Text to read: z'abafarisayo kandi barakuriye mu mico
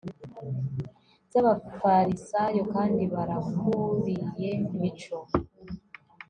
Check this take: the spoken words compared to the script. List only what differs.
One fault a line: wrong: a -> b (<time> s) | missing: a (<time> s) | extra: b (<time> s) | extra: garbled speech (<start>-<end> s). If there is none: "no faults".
missing: mu (4.5 s)